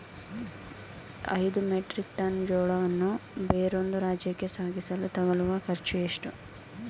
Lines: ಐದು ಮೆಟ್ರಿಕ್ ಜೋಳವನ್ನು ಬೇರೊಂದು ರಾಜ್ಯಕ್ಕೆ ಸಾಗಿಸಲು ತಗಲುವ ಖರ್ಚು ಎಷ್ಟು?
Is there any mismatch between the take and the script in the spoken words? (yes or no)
yes